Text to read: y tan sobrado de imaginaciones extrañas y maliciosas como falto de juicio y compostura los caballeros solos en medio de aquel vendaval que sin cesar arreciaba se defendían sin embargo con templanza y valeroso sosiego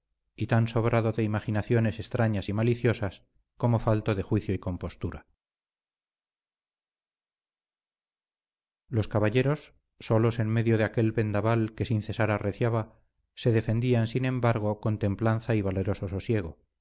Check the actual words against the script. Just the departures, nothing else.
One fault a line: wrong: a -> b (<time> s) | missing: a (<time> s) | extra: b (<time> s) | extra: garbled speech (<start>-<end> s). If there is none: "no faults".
no faults